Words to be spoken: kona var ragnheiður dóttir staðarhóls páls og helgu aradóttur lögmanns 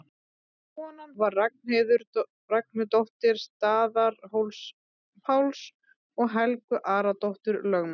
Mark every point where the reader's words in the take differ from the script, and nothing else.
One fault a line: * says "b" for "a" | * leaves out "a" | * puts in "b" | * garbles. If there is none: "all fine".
all fine